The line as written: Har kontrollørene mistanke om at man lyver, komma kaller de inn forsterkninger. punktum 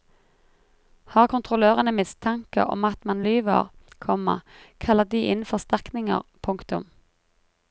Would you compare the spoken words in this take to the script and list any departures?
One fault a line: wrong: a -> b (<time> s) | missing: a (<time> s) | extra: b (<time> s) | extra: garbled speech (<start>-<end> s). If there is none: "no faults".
no faults